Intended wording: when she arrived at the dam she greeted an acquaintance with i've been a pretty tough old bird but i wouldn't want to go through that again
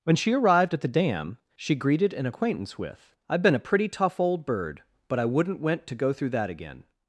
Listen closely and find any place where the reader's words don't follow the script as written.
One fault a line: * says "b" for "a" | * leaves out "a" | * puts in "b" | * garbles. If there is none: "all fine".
* says "went" for "want"